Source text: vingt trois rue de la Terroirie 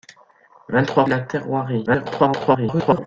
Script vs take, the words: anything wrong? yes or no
yes